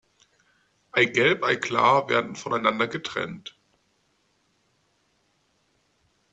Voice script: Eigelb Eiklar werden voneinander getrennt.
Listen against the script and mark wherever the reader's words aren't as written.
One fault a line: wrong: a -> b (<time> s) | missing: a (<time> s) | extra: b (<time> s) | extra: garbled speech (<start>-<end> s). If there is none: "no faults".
no faults